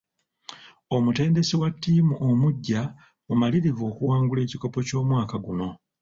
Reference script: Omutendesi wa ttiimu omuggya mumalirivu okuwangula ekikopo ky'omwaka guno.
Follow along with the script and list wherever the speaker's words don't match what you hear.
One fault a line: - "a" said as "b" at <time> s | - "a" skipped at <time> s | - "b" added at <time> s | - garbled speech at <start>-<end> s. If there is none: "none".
none